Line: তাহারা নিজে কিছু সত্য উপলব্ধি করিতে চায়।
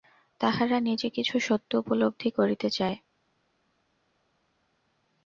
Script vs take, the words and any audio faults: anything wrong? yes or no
no